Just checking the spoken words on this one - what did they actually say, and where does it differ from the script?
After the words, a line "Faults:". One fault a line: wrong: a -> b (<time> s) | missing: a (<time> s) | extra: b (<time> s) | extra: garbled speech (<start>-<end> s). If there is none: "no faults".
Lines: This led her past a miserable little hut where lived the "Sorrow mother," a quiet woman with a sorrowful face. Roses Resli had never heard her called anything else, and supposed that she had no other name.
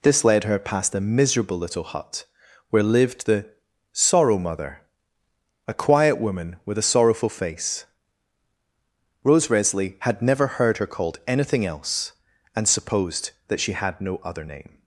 This led her past a miserable little hut where lived the "Sorrow mother," a quiet woman with a sorrowful face. Rose Resli had never heard her called anything else, and supposed that she had no other name.
Faults:
wrong: Roses -> Rose (9.2 s)